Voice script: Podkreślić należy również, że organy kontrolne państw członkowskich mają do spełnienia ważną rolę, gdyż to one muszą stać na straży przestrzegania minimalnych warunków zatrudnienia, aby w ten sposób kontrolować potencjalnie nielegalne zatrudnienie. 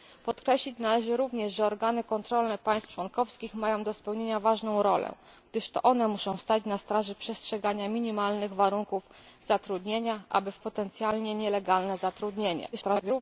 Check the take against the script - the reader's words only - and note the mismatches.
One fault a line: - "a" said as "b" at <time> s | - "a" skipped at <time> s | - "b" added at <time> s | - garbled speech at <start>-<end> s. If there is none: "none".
- "ten sposób kontrolować" skipped at 10.6 s
- garbled speech at 12.7-13.2 s